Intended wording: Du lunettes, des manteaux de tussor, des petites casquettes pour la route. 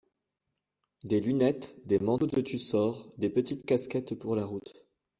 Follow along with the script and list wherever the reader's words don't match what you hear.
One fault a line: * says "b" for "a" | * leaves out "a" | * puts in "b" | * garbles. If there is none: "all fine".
* says "Des" for "Du"